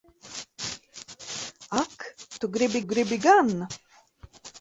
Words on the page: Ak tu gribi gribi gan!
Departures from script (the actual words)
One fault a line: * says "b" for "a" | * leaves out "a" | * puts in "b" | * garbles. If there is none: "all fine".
all fine